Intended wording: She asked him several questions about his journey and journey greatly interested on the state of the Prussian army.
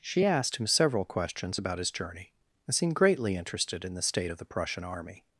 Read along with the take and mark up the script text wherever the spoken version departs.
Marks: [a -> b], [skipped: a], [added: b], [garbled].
She asked him several questions about his journey and [journey -> seemed] greatly interested [on -> in] the state of the Prussian army.